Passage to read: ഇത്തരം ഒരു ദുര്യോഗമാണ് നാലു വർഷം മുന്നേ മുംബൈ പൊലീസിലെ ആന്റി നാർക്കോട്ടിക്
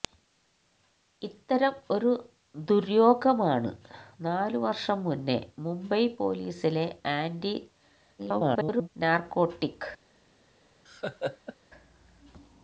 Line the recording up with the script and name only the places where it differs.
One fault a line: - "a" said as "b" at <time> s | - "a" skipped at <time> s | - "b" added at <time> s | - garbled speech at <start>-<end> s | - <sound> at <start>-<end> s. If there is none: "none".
- garbled speech at 8.2-8.9 s
- laugh at 10.9-11.6 s